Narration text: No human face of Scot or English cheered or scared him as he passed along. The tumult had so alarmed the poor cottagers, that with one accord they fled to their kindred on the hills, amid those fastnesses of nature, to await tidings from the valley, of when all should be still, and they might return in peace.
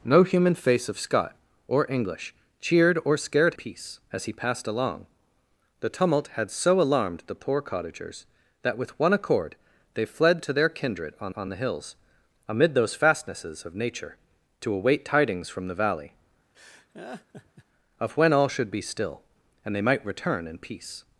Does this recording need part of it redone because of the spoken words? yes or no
yes